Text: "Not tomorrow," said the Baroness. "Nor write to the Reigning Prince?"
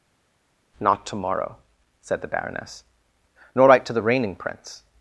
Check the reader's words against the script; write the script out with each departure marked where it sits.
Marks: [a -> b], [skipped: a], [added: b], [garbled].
"Not tomorrow," said the Baroness. "Nor write to the Reigning Prince?"